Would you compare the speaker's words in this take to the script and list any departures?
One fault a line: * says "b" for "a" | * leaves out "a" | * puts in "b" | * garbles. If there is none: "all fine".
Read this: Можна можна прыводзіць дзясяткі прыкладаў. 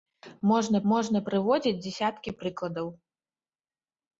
all fine